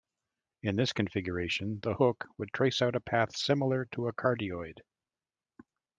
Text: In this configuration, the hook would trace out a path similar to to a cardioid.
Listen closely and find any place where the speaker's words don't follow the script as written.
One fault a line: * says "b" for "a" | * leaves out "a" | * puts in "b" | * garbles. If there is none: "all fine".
* leaves out "to"